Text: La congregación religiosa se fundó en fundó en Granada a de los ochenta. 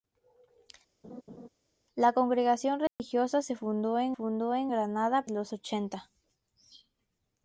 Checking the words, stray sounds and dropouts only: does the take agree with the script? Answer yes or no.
no